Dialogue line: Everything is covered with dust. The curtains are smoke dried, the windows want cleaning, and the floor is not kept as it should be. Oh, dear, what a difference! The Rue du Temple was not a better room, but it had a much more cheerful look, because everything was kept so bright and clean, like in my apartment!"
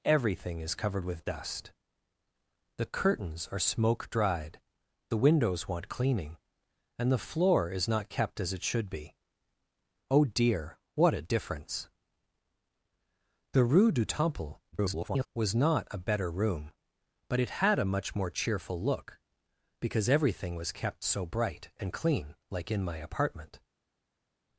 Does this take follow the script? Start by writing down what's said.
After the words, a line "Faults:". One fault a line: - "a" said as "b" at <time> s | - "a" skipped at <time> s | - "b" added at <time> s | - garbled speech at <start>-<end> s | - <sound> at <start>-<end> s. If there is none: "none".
Everything is covered with dust. The curtains are smoke dried, the windows want cleaning, and the floor is not kept as it should be. Oh, dear, what a difference! The Rue du Temple [garbled] was not a better room, but it had a much more cheerful look, because everything was kept so bright and clean, like in my apartment!"
Faults:
- garbled speech at 14.7-15.3 s